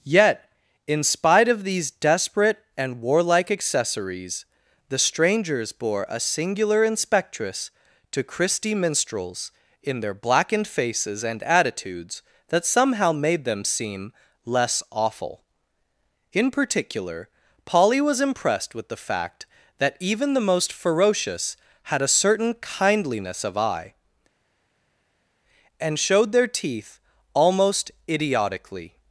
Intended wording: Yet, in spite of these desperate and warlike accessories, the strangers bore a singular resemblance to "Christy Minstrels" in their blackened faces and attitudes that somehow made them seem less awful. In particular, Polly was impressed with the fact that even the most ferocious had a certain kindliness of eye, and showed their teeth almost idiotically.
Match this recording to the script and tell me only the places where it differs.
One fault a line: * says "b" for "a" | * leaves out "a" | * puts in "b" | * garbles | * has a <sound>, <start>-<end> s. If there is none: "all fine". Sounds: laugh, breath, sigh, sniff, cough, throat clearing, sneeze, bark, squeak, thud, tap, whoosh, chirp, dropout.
* says "inspectress" for "resemblance"